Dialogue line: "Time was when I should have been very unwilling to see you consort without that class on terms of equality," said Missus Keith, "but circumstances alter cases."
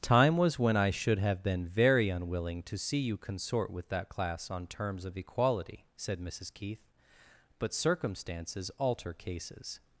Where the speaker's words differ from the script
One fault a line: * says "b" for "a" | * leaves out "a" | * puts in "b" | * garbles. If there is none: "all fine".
* says "with" for "without"